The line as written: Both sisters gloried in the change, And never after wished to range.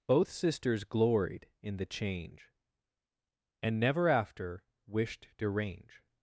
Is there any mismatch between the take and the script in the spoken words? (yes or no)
no